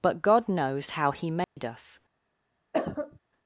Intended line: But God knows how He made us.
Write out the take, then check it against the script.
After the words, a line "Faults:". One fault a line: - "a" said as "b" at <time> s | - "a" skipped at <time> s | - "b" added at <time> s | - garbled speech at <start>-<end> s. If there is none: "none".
But God knows how He made us.
Faults:
none